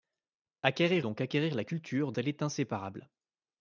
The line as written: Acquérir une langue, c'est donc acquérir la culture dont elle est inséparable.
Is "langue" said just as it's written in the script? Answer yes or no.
no